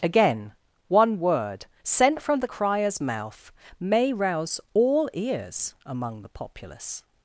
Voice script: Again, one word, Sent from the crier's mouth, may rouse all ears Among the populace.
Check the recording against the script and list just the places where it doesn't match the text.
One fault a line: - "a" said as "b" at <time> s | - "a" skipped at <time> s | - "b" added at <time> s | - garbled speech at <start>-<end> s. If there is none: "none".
none